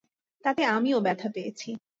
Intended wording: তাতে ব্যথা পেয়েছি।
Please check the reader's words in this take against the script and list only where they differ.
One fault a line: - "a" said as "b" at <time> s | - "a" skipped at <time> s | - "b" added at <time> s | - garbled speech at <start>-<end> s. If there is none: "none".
- "আমিও" added at 0.7 s